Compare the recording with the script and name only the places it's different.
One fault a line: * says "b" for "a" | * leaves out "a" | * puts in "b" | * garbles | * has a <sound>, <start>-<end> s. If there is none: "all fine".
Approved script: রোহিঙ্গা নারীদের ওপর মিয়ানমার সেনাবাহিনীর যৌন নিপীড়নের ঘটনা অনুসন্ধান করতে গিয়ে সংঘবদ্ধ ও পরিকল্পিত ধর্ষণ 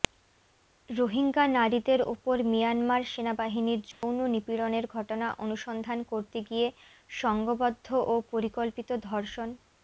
* has a dropout, 3.9-4.0 s